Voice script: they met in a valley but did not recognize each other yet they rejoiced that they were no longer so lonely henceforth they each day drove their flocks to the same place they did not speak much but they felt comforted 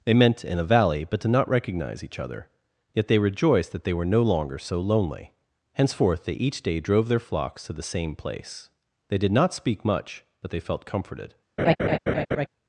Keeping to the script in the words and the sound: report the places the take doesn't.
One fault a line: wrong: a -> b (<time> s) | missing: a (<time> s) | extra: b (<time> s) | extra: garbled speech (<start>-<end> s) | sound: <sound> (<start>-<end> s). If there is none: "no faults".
wrong: met -> meant (0.1 s)
sound: laugh (11.6-12.5 s)